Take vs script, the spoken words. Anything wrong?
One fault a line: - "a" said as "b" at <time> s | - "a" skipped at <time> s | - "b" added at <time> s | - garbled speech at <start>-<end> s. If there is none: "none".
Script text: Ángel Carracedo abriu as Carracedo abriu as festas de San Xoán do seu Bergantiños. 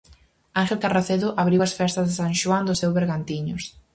- "Carracedo abriu as" skipped at 1.8 s